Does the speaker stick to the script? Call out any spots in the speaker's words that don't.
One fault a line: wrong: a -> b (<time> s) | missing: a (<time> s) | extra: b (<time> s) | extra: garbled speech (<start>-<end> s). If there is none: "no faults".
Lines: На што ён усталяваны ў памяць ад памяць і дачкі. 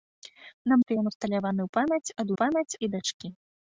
no faults